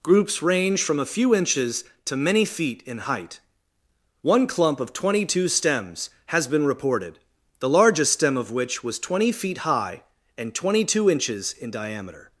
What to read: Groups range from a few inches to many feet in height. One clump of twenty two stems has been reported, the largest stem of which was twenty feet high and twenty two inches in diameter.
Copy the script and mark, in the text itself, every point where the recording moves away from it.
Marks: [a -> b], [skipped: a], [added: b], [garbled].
Groups range from a few inches to many feet in height. One clump of twenty two stems has been reported, the largest stem of which was twenty feet high and twenty two inches in diameter.